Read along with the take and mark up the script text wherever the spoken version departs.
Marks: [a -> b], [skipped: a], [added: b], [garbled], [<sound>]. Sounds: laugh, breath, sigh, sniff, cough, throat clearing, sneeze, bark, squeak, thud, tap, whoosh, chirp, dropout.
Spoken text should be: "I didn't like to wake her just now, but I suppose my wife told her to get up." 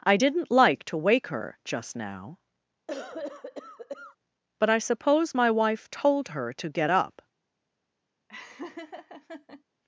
"I didn't like to wake her just now, [cough] but I suppose my wife told her to get up." [laugh]